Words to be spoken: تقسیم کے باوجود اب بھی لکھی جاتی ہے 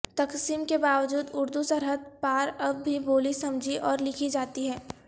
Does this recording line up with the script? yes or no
no